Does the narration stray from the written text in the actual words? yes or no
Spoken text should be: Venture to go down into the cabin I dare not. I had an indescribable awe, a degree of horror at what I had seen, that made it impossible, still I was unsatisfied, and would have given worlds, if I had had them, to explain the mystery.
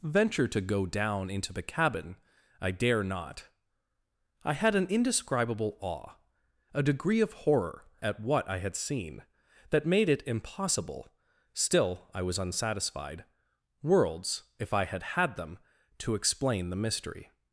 yes